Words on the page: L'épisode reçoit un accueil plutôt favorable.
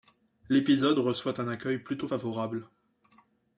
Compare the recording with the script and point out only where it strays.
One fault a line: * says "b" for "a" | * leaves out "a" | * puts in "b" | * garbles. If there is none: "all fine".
all fine